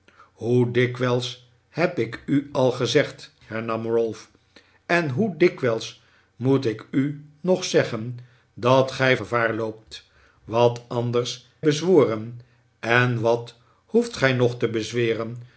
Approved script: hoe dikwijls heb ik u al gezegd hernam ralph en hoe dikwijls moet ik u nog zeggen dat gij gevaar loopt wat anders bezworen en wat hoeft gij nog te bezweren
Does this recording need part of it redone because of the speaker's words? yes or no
no